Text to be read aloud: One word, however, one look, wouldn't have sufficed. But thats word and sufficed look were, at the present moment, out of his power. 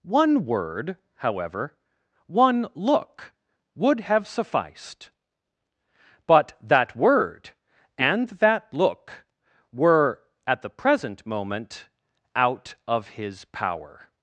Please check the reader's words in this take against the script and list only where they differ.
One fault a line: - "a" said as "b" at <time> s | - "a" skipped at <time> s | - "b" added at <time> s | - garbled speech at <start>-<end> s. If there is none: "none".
- "wouldn't" said as "would" at 3.7 s
- "thats" said as "that" at 6.6 s
- "sufficed" said as "that" at 8.3 s